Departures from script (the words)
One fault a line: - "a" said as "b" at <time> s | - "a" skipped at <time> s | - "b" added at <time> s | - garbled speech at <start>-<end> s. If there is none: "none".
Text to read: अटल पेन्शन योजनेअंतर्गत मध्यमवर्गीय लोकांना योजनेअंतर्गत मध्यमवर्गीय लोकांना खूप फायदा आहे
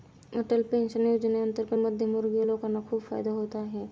- "योजनेअंतर्गत मध्यमवर्गीय लोकांना" skipped at 2.8 s
- "होत" added at 3.3 s